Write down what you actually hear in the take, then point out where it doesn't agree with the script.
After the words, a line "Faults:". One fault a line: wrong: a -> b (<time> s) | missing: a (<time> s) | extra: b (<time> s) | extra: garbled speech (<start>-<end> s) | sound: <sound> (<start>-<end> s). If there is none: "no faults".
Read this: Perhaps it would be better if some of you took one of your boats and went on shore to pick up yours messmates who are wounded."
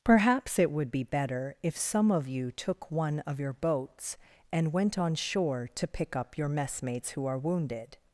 Perhaps it would be better if some of you took one of your boats and went on shore to pick up your messmates who are wounded."
Faults:
wrong: yours -> your (6.4 s)